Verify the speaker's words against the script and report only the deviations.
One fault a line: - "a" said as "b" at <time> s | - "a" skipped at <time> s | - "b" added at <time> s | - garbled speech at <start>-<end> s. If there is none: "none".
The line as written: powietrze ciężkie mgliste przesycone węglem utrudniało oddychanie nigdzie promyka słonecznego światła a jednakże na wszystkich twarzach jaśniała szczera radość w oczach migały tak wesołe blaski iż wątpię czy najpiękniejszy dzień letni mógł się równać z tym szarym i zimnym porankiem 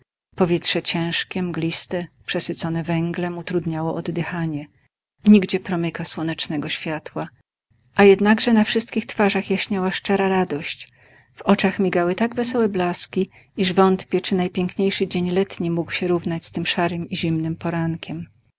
none